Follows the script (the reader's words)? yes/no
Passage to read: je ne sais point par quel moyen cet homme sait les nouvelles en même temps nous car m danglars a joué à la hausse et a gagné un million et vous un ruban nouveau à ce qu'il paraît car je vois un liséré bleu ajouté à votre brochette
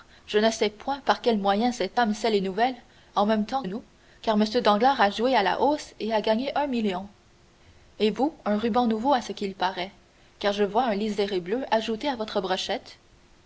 yes